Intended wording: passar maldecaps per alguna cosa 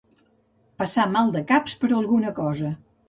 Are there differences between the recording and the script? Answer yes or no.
no